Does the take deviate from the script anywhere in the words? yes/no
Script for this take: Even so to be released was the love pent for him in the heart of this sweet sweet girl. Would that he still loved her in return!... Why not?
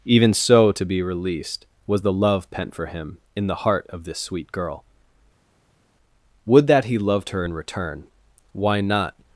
yes